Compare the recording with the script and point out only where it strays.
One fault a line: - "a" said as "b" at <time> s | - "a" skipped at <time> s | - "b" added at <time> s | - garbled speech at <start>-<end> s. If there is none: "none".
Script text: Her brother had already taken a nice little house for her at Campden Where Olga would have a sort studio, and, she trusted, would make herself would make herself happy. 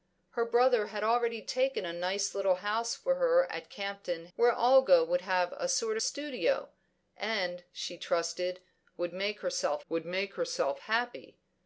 none